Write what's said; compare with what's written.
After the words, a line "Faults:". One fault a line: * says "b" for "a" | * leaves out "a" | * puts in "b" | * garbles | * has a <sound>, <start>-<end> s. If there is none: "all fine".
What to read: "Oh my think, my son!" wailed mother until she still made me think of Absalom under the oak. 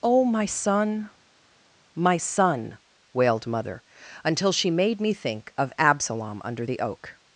"Oh my son, my son!" wailed mother until she made me think of Absalom under the oak.
Faults:
* says "son" for "think"
* leaves out "still"